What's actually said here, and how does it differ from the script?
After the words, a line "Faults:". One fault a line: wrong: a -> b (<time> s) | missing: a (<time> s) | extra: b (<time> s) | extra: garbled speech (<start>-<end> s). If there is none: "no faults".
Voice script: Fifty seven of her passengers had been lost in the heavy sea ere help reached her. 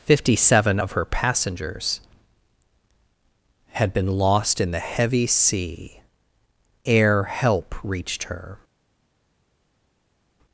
Fifty seven of her passengers had been lost in the heavy sea ere help reached her.
Faults:
no faults